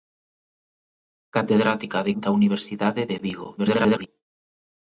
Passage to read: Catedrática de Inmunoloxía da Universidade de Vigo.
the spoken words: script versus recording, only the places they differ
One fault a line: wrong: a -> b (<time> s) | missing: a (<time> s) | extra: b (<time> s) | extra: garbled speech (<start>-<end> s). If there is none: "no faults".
missing: Inmunoloxía (2.1 s)
extra: garbled speech (3.6-4.1 s)